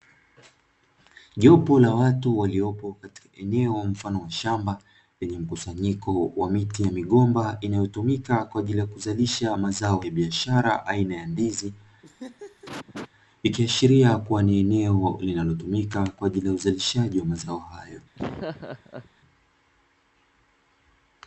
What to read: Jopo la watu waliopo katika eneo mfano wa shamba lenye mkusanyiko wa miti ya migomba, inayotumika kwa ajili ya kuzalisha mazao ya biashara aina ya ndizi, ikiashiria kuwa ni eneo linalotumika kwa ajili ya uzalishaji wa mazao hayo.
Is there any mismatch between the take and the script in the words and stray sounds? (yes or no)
yes